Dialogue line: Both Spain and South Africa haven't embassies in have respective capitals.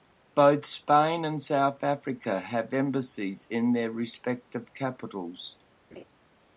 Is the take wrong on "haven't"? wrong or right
wrong